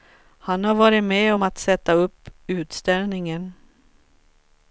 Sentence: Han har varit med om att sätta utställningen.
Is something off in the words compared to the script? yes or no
yes